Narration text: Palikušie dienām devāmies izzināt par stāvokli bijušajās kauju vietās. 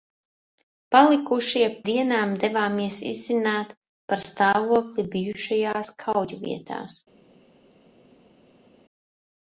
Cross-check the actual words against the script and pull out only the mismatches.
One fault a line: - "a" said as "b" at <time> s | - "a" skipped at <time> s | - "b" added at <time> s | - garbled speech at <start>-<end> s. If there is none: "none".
none